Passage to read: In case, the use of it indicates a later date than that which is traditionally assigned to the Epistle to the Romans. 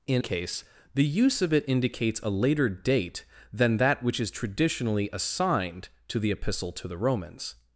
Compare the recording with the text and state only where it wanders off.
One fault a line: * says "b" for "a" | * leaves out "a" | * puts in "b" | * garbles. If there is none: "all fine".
all fine